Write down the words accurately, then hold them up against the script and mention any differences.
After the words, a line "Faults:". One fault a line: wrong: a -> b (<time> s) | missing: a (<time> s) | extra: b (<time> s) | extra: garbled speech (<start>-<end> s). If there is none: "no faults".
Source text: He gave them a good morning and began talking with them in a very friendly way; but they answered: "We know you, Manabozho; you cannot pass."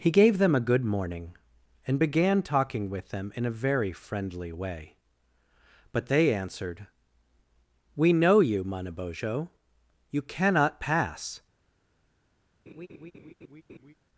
He gave them a good morning and began talking with them in a very friendly way; but they answered: "We know you, Manabozho; you cannot pass."
Faults:
no faults